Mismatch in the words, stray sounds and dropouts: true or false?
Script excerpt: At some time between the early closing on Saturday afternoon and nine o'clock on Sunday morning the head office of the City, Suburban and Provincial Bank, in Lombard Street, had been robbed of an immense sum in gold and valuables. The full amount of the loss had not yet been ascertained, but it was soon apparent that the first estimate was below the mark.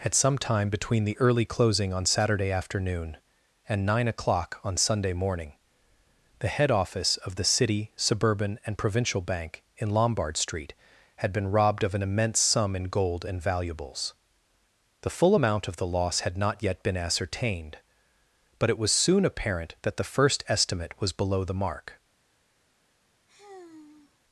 true